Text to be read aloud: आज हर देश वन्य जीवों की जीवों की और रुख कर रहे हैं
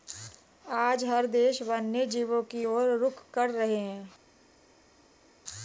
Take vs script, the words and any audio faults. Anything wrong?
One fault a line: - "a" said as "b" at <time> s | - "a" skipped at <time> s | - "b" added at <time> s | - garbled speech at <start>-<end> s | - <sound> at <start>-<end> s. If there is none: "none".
- "जीवों की" skipped at 2.6 s